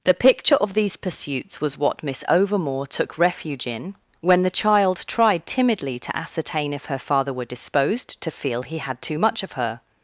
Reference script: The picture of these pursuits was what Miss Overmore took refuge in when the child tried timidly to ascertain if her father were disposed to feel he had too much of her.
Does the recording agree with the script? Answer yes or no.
yes